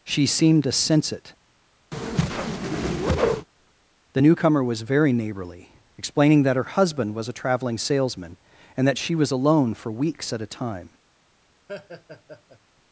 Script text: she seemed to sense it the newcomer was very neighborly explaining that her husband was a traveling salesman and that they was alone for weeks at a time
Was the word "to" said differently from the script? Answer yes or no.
no